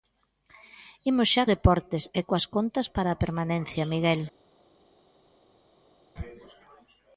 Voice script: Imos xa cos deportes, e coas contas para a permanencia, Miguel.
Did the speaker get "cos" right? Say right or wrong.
wrong